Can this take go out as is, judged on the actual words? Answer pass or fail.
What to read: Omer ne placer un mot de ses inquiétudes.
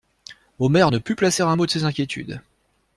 fail